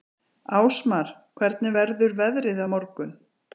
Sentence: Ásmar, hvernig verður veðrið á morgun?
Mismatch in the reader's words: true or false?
false